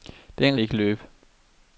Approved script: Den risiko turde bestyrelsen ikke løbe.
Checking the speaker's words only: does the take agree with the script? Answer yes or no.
no